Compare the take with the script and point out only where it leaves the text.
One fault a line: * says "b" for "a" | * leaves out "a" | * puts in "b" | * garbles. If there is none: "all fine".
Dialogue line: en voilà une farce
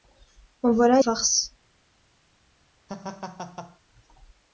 * leaves out "une"